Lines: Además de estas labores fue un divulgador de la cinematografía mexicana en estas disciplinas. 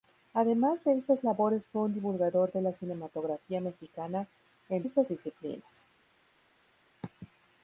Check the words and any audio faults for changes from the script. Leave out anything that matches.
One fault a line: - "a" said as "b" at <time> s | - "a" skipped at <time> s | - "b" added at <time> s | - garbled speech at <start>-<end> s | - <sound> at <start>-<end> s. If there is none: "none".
none